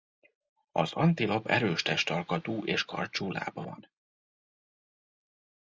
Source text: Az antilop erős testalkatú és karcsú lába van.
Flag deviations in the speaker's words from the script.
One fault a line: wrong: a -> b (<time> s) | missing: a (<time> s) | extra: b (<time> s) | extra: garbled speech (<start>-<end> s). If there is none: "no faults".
no faults